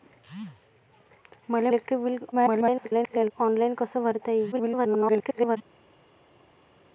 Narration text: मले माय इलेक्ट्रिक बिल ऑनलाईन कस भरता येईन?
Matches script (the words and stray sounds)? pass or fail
fail